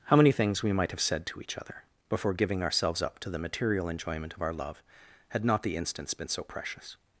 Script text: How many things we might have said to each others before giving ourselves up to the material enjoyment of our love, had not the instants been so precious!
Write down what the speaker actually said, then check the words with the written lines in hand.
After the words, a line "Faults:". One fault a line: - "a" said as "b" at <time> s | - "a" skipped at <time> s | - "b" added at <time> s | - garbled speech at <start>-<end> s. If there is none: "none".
How many things we might have said to each other before giving ourselves up to the material enjoyment of our love, had not the instants been so precious!
Faults:
- "others" said as "other" at 1.6 s